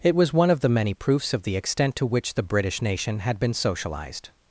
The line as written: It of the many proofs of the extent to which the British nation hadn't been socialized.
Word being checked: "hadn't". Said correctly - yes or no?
no